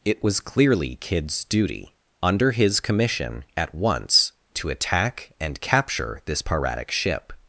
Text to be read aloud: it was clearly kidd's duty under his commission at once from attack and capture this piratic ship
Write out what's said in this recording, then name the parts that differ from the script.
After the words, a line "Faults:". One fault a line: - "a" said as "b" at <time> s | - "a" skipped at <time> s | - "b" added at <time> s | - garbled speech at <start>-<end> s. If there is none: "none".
it was clearly kidd's duty under his commission at once to attack and capture this piratic ship
Faults:
- "from" said as "to" at 4.5 s